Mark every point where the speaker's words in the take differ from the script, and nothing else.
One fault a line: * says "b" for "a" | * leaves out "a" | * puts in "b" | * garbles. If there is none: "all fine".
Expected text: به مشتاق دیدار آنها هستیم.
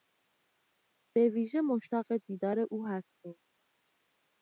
* puts in "ویژه"
* says "او" for "آنها"